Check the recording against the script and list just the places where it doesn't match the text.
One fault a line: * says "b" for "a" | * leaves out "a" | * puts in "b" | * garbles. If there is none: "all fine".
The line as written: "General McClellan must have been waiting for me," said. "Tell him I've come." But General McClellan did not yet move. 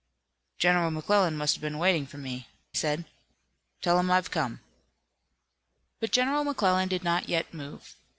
all fine